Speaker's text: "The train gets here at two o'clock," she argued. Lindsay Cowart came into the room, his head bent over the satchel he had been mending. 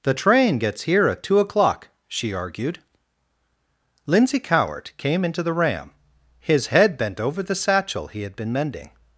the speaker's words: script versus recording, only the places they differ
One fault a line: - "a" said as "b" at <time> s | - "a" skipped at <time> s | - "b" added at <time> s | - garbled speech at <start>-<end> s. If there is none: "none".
- "room" said as "ram" at 5.5 s